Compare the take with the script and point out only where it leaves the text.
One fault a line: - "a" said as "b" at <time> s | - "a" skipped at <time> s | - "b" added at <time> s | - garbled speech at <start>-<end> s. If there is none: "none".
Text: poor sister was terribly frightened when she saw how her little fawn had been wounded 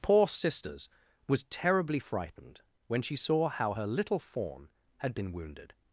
- "sister" said as "sisters" at 0.3 s